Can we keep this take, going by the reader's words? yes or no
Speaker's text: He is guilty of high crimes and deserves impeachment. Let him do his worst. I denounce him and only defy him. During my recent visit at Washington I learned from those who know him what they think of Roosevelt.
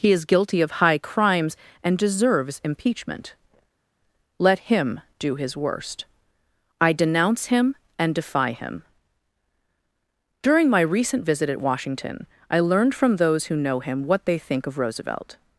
no